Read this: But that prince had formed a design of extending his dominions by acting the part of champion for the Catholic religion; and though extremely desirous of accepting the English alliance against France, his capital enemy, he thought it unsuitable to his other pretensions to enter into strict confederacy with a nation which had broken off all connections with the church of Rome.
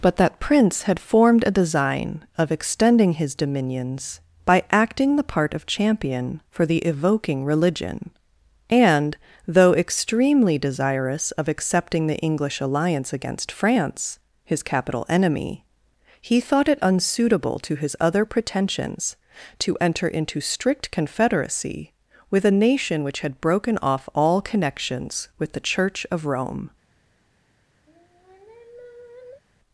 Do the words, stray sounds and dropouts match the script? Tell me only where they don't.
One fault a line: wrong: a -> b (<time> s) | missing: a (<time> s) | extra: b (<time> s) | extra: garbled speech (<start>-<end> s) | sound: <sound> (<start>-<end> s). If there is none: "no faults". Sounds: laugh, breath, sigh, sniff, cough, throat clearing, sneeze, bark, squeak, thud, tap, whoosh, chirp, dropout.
wrong: Catholic -> Evoking (6.8 s)
sound: sigh (27.9-29.4 s)